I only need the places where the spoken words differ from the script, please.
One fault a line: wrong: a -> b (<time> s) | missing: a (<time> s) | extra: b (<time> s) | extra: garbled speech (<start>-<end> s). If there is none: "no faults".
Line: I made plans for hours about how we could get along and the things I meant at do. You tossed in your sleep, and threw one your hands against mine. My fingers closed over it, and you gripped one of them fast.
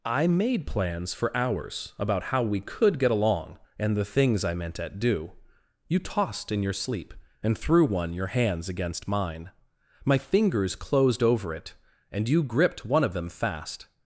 no faults